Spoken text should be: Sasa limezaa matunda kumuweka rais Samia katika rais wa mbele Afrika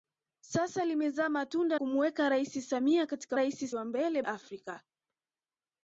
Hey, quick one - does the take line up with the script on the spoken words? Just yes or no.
yes